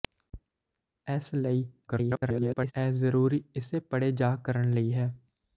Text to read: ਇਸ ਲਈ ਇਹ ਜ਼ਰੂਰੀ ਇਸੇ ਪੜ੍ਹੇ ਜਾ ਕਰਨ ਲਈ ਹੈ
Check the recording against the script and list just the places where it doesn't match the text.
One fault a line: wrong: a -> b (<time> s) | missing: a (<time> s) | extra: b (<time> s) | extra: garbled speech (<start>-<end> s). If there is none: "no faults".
extra: garbled speech (1.9-2.7 s)